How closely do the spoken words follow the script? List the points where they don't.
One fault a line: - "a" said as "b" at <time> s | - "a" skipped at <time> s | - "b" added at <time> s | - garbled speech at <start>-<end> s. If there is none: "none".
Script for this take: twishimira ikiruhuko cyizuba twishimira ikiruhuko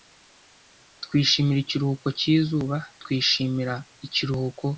none